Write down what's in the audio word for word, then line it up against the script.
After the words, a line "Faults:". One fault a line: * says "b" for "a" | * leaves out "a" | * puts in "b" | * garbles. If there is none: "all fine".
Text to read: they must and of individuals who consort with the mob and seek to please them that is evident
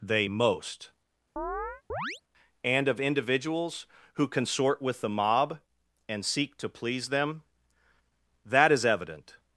they most and of individuals who consort with the mob and seek to please them that is evident
Faults:
* says "most" for "must"